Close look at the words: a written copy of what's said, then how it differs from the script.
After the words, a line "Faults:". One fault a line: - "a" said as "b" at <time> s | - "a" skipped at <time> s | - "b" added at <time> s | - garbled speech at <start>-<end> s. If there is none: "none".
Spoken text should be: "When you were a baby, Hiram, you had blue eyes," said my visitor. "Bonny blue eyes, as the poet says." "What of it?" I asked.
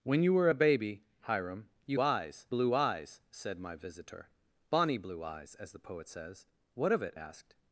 "When you were a baby, Hiram, you eyes blue eyes," said my visitor. "Bonny blue eyes, as the poet says." "What of it?" asked.
Faults:
- "had" said as "eyes" at 2.0 s
- "I" skipped at 7.1 s